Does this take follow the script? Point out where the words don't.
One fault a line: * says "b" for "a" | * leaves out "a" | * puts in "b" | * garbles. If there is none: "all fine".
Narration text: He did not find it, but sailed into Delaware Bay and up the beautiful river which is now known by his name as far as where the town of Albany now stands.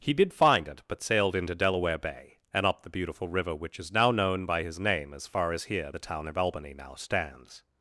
* leaves out "not"
* says "here" for "where"